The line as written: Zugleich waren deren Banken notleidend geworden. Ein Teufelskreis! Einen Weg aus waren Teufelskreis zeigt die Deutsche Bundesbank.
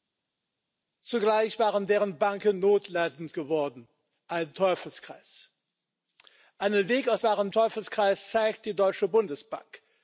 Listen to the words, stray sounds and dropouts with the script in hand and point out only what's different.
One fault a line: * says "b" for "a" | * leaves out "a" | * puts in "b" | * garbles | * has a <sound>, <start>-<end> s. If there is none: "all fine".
all fine